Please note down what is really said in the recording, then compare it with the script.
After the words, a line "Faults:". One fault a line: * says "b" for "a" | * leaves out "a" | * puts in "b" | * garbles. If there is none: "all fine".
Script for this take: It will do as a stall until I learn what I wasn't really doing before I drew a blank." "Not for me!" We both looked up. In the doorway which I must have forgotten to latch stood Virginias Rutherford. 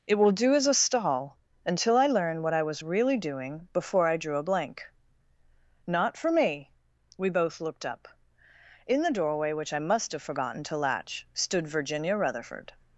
It will do as a stall until I learn what I was really doing before I drew a blank." "Not for me!" We both looked up. In the doorway which I must have forgotten to latch stood Virginia Rutherford.
Faults:
* says "was" for "wasn't"
* says "Virginia" for "Virginias"